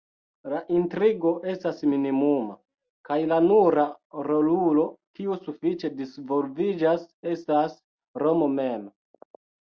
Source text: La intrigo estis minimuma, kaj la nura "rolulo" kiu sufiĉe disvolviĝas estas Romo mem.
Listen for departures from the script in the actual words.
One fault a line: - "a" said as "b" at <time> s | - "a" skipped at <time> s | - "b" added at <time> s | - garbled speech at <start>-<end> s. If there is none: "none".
- "estis" said as "estas" at 1.5 s